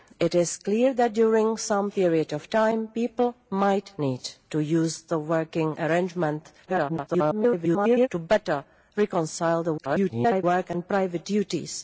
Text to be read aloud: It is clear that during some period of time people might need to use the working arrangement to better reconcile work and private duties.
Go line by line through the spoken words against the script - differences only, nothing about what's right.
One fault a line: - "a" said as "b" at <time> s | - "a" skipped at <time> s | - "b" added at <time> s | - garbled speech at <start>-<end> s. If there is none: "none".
- garbled speech at 6.7-8.1 s
- garbled speech at 9.8-10.4 s